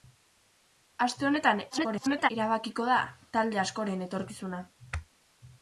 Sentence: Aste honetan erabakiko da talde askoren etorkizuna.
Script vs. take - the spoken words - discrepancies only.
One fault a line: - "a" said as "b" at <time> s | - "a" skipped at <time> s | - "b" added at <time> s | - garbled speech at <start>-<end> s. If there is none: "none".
- garbled speech at 1.7-2.3 s